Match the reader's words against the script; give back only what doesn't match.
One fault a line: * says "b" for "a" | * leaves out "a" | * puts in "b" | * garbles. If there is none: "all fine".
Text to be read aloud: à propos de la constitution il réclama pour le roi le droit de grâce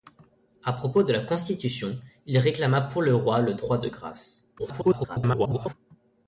* garbles